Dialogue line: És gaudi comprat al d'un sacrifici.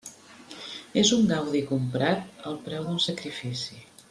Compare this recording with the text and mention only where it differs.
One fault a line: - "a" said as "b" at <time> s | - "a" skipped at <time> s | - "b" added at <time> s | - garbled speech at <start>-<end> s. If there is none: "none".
- "un" added at 1.2 s
- "preu" added at 2.7 s